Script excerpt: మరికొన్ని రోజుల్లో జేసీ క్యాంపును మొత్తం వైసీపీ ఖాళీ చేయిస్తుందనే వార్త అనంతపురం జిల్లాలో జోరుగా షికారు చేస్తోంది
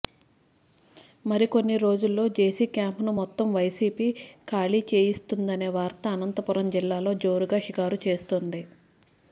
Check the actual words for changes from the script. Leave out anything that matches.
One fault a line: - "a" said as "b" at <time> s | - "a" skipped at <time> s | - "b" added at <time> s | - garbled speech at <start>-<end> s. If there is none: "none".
none